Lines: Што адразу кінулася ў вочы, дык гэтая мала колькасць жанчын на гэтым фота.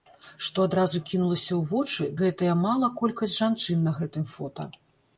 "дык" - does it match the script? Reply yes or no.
no